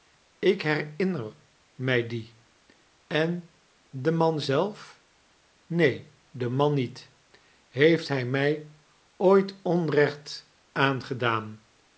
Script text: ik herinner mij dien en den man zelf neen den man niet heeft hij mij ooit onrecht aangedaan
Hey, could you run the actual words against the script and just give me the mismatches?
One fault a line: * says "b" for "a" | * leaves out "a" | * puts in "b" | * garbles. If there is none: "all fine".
all fine